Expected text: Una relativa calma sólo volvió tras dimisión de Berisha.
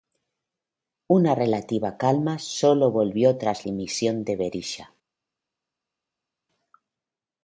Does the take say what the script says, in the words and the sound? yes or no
yes